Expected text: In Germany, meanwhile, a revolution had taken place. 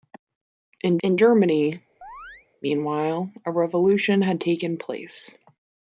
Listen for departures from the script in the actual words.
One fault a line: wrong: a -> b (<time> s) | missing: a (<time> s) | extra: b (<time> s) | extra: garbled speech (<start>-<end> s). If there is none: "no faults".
extra: in (1.0 s)